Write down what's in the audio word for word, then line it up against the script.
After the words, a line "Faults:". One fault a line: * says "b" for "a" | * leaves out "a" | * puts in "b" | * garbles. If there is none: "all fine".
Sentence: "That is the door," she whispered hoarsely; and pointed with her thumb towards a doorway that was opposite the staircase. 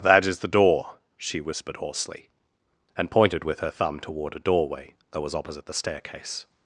"That is the door," she whispered hoarsely; and pointed with her thumb toward a doorway that was opposite the staircase.
Faults:
* says "toward" for "towards"